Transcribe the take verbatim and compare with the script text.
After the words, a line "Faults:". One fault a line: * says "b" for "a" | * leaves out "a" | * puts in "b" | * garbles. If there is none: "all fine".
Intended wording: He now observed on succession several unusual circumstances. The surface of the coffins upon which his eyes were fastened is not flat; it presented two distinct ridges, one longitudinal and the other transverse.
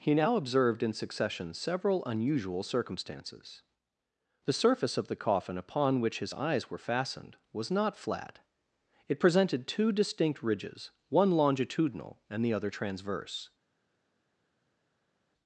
He now observed in succession several unusual circumstances. The surface of the coffin upon which his eyes were fastened was not flat; it presented two distinct ridges, one longitudinal and the other transverse.
Faults:
* says "in" for "on"
* says "coffin" for "coffins"
* says "was" for "is"